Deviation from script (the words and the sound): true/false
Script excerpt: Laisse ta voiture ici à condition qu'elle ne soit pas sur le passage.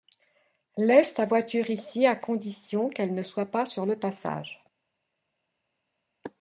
false